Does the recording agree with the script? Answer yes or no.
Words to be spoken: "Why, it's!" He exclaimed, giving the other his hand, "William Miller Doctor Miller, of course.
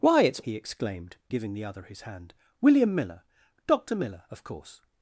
yes